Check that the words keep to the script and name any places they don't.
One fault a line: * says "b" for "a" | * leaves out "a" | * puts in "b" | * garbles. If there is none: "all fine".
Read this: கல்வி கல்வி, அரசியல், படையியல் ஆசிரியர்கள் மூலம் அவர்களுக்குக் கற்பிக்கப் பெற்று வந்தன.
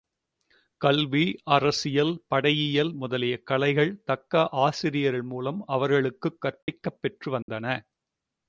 * leaves out "கல்வி"
* puts in "முதலிய கலைகள் தக்க"